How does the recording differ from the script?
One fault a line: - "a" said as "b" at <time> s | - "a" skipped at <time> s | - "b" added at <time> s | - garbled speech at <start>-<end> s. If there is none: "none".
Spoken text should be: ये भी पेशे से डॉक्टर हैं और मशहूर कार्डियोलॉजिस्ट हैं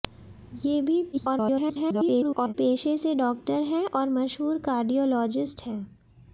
- garbled speech at 1.1-2.5 s